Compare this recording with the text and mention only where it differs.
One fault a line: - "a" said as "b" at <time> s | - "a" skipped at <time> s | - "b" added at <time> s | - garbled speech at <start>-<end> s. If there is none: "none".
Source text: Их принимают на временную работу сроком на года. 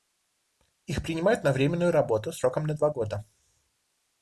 - "два" added at 2.7 s